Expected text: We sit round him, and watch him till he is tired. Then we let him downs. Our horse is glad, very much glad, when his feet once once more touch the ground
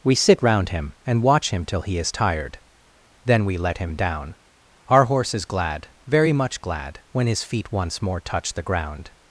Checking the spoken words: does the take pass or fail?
fail